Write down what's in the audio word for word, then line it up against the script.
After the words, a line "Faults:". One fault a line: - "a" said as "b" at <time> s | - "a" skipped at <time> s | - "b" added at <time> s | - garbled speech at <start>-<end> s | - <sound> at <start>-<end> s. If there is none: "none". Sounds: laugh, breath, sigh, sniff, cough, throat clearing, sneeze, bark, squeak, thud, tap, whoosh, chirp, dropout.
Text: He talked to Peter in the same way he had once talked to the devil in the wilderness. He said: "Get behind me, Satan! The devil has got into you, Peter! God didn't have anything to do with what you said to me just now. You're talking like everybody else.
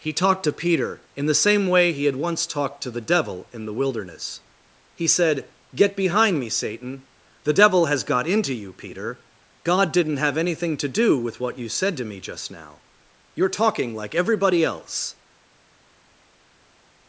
He talked to Peter in the same way he had once talked to the devil in the wilderness. He said: "Get behind me, Satan! The devil has got into you, Peter! God didn't have anything to do with what you said to me just now. You're talking like everybody else.
Faults:
none